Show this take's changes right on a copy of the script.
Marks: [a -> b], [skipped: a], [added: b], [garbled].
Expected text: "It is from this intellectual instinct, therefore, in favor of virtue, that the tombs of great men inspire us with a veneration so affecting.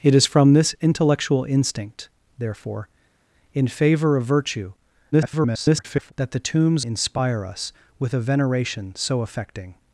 "It is from this intellectual instinct, therefore, in favor of virtue, [garbled] that the tombs [skipped: of great men] inspire us with a veneration so affecting.